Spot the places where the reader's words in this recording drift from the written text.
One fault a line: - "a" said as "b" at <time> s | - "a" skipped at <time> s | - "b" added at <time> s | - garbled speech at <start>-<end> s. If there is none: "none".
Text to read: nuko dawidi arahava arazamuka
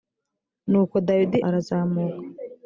- "arahava" skipped at 1.4 s